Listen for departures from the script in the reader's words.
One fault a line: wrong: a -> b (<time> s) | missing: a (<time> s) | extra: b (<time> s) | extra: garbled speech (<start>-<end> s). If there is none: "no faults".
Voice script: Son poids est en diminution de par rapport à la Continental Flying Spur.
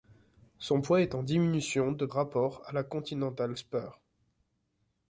missing: par (2.1 s)
missing: Flying (3.5 s)